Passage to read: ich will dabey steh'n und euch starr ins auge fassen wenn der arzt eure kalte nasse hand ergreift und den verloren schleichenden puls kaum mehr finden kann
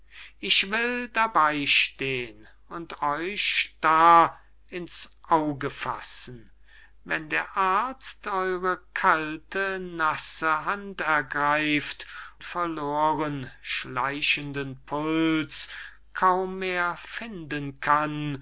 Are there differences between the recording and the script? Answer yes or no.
yes